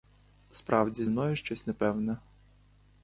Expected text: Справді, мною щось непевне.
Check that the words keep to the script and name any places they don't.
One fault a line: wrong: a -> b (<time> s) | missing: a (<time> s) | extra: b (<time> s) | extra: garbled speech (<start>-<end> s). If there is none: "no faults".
no faults